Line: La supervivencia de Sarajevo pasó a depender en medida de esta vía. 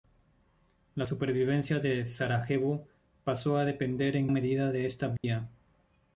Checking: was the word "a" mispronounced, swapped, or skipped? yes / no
no